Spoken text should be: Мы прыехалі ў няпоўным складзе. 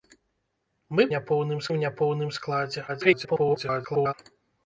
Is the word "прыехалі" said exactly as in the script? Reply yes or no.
no